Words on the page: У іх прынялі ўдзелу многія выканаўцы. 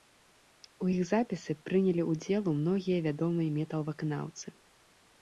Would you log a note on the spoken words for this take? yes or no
yes